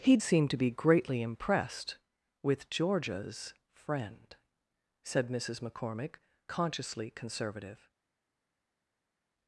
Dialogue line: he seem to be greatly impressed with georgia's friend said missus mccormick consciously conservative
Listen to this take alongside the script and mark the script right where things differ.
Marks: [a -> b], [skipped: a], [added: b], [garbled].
he seem to be greatly impressed with georgia's friend said missus mccormick consciously conservative